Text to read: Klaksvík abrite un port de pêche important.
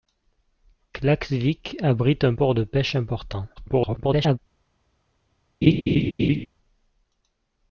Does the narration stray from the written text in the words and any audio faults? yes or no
yes